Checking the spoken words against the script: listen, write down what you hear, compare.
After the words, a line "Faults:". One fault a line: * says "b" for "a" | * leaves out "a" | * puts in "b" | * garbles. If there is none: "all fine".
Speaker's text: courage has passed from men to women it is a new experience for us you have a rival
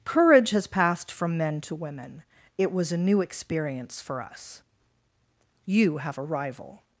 courage has passed from men to women it was a new experience for us you have a rival
Faults:
* says "was" for "is"